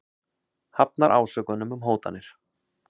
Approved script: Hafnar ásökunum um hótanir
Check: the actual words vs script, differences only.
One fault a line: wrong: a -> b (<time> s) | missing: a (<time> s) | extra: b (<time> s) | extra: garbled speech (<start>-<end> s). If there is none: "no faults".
no faults